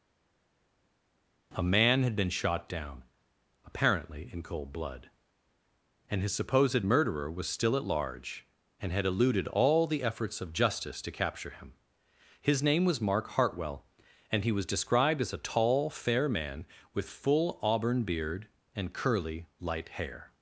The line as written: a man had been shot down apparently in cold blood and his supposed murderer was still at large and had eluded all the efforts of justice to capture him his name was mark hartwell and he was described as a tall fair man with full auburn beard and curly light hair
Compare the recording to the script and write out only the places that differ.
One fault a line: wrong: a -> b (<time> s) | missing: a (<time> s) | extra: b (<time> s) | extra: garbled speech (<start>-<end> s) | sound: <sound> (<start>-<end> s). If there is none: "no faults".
no faults